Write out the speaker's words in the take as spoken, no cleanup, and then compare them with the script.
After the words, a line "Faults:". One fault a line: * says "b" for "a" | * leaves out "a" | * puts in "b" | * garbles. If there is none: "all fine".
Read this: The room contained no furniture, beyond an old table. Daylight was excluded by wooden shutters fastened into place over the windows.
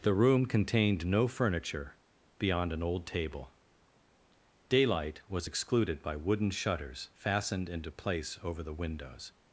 The room contained no furniture, beyond an old table. Daylight was excluded by wooden shutters fastened into place over the windows.
Faults:
all fine